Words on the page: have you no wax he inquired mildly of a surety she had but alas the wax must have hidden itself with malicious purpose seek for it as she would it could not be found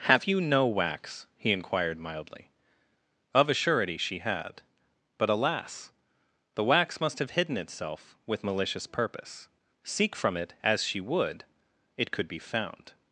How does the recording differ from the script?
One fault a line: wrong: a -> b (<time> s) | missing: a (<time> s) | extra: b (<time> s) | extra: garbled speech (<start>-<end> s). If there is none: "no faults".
wrong: for -> from (10.2 s)
missing: not (12.3 s)